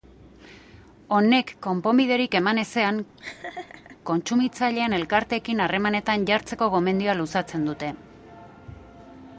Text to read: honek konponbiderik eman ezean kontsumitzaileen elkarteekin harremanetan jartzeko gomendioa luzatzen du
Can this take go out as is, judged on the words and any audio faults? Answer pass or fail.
fail